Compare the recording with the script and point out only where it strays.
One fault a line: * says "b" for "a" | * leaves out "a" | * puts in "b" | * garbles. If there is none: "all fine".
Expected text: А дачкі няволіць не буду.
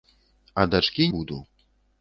* leaves out "няволіць не"